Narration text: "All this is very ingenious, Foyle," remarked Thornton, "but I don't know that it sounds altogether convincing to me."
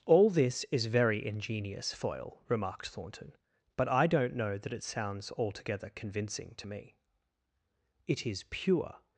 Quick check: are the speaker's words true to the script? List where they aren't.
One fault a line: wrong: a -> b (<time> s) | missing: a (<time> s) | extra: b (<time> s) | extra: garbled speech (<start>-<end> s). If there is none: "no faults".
extra: It is pure (8.1 s)